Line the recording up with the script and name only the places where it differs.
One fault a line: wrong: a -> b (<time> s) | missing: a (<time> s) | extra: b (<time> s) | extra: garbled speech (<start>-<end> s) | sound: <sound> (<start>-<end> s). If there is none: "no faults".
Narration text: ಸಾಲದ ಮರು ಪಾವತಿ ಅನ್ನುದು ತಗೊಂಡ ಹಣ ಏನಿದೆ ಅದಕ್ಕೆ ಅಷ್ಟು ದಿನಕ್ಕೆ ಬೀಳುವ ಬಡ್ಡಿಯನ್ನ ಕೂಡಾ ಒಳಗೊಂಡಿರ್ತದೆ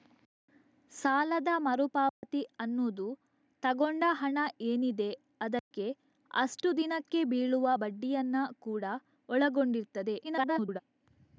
sound: dropout (2.1-2.2 s)
sound: dropout (5.6-5.7 s)
extra: garbled speech (10.2-10.8 s)